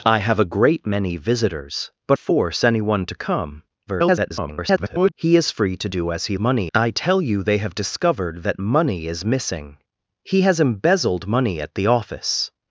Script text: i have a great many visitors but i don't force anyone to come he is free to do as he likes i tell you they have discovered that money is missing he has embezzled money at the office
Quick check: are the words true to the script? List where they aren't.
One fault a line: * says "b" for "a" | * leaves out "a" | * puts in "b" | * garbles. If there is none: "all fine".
* leaves out "i don't"
* garbles
* says "money" for "likes"